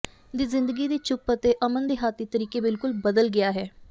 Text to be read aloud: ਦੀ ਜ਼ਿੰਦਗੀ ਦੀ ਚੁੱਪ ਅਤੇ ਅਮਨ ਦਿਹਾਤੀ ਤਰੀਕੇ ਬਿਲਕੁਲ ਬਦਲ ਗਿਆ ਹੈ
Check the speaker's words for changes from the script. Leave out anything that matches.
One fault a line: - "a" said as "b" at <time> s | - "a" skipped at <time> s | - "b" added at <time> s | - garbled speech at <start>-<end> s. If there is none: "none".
none